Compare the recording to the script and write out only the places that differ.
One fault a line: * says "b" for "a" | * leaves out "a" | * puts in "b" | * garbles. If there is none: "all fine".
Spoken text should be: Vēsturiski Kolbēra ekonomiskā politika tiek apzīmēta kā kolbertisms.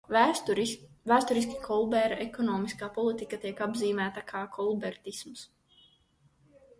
all fine